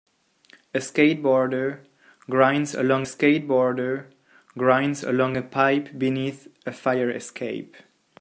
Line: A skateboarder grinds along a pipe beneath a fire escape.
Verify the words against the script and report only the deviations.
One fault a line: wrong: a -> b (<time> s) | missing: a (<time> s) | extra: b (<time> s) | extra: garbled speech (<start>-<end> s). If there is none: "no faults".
extra: skateboarder grinds along (3.0 s)